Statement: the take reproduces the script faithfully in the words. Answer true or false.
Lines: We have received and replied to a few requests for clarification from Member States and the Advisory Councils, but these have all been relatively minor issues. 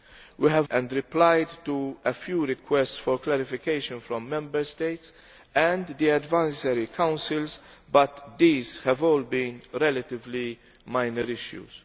false